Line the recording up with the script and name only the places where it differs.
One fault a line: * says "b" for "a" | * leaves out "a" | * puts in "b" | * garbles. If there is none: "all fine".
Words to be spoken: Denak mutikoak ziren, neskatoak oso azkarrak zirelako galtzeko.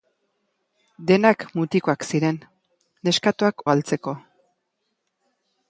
* leaves out "oso azkarrak zirelako"